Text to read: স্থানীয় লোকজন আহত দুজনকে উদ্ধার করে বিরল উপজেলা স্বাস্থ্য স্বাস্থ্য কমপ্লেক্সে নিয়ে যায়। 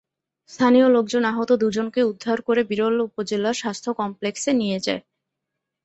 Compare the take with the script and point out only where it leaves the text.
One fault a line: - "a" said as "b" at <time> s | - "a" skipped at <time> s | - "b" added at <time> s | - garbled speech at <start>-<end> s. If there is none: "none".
- "স্বাস্থ্য" skipped at 3.9 s